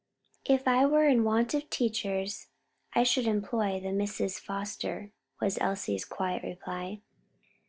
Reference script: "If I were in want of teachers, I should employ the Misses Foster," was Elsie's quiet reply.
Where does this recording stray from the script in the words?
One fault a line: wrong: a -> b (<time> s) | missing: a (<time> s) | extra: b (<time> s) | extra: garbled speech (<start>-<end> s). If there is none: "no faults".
no faults